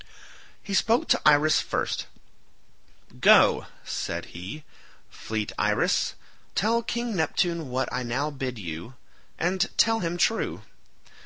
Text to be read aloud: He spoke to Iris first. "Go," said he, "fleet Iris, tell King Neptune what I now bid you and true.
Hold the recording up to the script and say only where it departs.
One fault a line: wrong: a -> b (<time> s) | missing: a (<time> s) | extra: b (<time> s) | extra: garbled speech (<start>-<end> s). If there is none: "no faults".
extra: tell him (9.8 s)